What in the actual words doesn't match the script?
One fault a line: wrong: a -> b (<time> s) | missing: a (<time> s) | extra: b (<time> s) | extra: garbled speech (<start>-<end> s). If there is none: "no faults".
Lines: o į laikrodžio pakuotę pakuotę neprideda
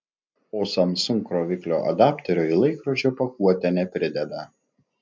extra: samsung kroviklio adapterio (0.7 s)
missing: pakuotę (3.8 s)